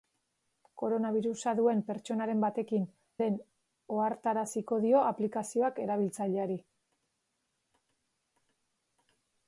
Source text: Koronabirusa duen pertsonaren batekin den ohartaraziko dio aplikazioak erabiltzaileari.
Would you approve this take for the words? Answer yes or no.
yes